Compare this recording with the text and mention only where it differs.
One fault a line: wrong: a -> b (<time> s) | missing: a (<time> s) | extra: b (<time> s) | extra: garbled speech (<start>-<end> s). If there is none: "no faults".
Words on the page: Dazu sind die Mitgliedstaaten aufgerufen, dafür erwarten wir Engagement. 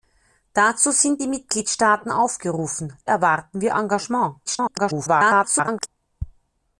missing: dafür (3.0 s)
extra: garbled speech (4.4-5.9 s)